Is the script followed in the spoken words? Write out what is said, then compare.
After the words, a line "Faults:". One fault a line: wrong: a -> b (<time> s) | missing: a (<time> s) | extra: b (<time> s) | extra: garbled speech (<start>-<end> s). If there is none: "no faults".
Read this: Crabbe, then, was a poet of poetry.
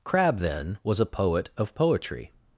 Crabbe, then, was a poet of poetry.
Faults:
no faults